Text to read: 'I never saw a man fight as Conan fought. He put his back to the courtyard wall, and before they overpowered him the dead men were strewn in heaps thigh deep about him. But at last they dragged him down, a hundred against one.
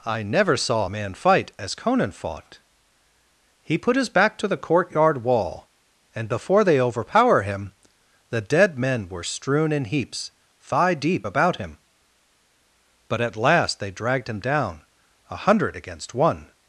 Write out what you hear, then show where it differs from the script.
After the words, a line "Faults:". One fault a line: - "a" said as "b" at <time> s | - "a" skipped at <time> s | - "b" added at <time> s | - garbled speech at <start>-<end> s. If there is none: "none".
'I never saw a man fight as Conan fought. He put his back to the courtyard wall, and before they overpower him the dead men were strewn in heaps thigh deep about him. But at last they dragged him down, a hundred against one.
Faults:
- "overpowered" said as "overpower" at 6.8 s